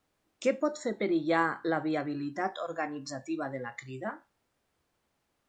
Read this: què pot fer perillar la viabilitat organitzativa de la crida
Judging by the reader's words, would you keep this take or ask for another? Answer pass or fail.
pass